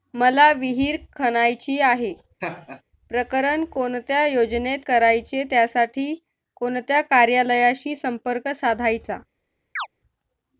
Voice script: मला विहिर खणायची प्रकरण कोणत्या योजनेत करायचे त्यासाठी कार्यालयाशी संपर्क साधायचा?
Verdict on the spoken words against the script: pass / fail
fail